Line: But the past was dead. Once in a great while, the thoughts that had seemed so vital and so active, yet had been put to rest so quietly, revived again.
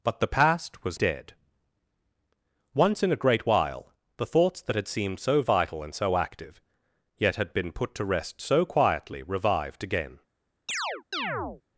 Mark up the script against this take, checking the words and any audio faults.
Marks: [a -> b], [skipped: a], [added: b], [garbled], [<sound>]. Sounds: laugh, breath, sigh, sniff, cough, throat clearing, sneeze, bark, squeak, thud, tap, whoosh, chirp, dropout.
But the past was dead. Once in a great while, the thoughts that had seemed so vital and so active, yet had been put to rest so quietly, revived again. [chirp]